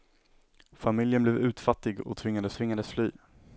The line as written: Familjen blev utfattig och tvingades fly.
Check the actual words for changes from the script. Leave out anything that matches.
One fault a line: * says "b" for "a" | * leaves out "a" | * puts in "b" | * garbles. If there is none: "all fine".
* puts in "tvingades"